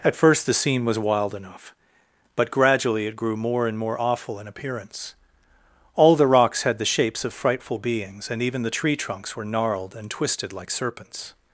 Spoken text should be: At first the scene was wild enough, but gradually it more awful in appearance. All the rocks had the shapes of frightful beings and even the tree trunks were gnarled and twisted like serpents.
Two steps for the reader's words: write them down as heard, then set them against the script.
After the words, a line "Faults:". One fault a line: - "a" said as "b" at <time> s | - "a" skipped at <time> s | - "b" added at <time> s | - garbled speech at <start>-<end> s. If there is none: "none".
At first the scene was wild enough, but gradually it grew more and more awful in appearance. All the rocks had the shapes of frightful beings and even the tree trunks were gnarled and twisted like serpents.
Faults:
- "grew more and" added at 3.1 s